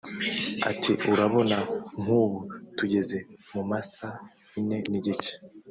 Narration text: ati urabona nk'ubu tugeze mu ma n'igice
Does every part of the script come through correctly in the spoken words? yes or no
no